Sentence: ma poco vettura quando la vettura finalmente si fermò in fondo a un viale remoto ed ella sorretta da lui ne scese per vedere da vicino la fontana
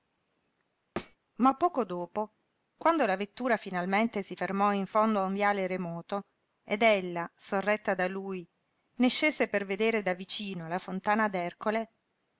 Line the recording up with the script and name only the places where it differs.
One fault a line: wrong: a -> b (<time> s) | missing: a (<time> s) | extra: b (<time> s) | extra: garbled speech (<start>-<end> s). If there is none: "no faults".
wrong: vettura -> dopo (1.9 s)